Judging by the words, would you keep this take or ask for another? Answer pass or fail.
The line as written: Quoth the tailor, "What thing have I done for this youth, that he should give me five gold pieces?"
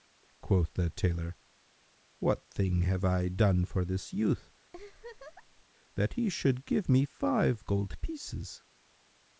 pass